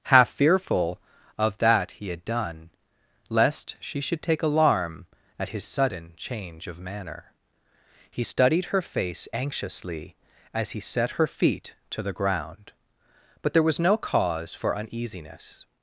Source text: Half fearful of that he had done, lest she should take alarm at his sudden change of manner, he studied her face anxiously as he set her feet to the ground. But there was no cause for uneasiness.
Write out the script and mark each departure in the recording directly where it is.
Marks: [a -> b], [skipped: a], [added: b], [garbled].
Half fearful of that he had done, lest she should take alarm at his sudden change of manner, he studied her face anxiously as he set her feet to the ground. But there was no cause for uneasiness.